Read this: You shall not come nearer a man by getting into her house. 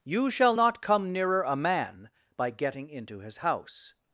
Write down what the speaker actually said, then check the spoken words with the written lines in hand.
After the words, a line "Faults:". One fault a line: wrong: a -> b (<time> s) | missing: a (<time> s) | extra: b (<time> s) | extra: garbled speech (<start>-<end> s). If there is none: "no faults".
You shall not come nearer a man by getting into his house.
Faults:
wrong: her -> his (3.2 s)